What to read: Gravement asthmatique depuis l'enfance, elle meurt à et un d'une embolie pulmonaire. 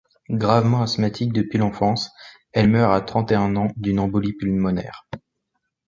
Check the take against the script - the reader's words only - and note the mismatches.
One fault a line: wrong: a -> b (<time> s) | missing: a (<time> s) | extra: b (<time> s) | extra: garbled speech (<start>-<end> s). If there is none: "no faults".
extra: trente (3.0 s)
extra: ans (3.5 s)